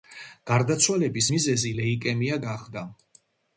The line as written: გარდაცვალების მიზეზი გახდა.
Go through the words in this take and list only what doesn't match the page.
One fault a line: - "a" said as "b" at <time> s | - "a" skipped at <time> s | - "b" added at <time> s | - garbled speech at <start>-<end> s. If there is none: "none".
- "ლეიკემია" added at 1.8 s